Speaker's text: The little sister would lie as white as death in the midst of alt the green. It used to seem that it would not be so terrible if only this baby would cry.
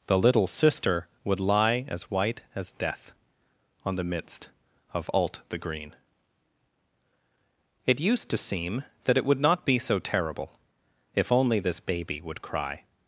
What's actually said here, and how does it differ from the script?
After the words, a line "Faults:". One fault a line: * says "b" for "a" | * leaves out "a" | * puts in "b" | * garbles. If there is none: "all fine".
The little sister would lie as white as death on the midst of alt the green. It used to seem that it would not be so terrible if only this baby would cry.
Faults:
* says "on" for "in"